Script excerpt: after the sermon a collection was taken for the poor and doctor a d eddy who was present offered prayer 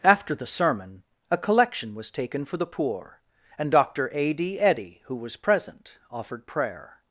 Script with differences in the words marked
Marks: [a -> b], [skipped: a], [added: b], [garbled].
after the sermon a collection was taken for the poor and doctor a d eddy who was present offered prayer